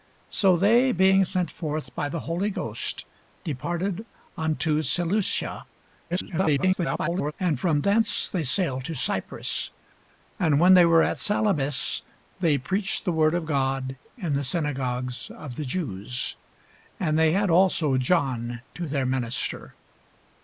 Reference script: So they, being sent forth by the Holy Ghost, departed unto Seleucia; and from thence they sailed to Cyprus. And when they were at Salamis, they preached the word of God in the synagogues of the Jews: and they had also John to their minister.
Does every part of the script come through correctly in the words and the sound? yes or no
no